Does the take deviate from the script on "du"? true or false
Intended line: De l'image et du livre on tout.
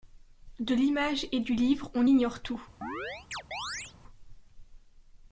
false